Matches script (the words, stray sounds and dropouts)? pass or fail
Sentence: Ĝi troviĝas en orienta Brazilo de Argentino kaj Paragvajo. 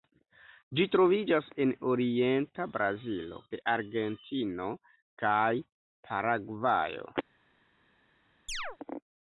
fail